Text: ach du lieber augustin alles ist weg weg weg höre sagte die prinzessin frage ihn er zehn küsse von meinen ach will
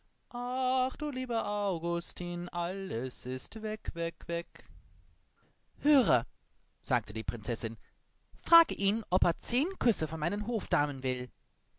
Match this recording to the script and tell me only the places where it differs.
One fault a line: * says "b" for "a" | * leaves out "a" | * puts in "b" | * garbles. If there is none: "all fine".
* puts in "ob"
* says "hofdamen" for "ach"